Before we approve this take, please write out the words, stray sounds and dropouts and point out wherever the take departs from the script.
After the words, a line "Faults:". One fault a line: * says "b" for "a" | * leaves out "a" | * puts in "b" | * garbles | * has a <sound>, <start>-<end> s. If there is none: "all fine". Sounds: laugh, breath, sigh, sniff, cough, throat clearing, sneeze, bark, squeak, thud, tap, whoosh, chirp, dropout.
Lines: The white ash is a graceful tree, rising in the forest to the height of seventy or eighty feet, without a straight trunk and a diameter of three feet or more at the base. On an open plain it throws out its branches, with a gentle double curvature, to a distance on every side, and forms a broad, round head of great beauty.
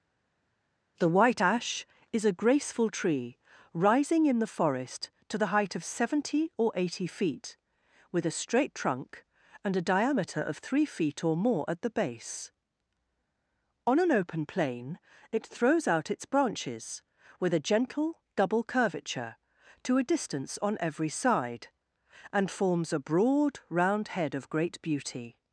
The white ash is a graceful tree, rising in the forest to the height of seventy or eighty feet, with a straight trunk and a diameter of three feet or more at the base. On an open plain it throws out its branches, with a gentle double curvature, to a distance on every side, and forms a broad, round head of great beauty.
Faults:
* says "with" for "without"